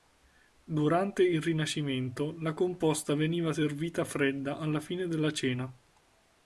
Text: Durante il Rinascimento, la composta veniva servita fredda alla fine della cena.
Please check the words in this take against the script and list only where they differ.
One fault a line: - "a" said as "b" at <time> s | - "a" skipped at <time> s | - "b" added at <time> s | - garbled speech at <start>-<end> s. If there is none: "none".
none